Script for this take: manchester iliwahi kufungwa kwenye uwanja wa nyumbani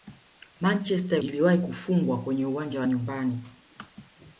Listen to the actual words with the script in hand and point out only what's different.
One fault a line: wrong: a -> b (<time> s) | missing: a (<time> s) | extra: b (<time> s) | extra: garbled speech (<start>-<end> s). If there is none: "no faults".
no faults